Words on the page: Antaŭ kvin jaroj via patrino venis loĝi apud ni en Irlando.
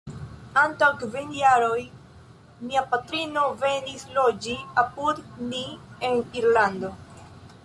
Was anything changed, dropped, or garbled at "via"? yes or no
yes